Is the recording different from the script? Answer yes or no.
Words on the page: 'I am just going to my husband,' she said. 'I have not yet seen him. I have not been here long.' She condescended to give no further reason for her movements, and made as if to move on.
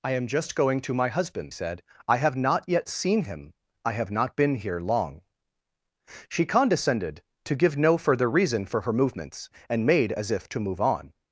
yes